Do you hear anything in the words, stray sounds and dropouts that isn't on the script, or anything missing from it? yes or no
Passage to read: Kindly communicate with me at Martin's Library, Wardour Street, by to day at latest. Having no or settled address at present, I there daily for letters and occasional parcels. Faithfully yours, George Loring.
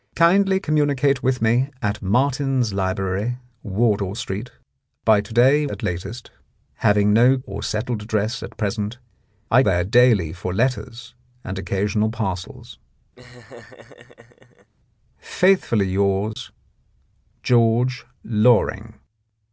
yes